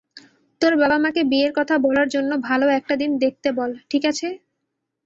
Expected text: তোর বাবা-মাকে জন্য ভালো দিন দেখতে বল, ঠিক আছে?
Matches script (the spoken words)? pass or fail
fail